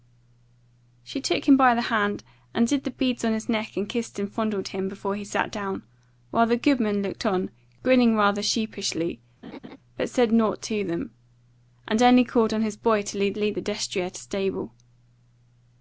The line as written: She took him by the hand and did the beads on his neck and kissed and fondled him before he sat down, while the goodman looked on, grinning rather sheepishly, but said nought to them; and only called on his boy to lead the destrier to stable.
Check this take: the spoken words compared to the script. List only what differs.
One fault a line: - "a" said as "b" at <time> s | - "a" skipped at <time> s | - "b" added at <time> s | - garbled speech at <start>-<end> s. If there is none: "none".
- "lead" added at 13.4 s